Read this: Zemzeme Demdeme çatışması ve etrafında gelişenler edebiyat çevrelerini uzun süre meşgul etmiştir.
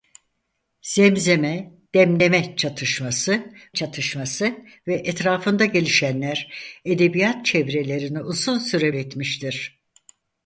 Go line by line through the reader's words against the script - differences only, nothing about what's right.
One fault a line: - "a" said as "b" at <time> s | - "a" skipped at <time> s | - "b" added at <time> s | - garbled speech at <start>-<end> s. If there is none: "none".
- "çatışması" added at 3.7 s
- "meşgul" skipped at 8.9 s